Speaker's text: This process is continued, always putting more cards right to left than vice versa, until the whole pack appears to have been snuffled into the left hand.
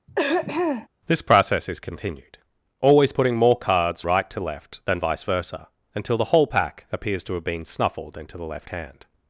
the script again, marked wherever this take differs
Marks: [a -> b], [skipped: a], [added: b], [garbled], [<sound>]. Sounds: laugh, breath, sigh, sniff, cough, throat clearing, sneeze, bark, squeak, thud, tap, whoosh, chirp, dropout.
[throat clearing] This process is continued, always putting more cards right to left than vice versa, until the whole pack appears to have been snuffled into the left hand.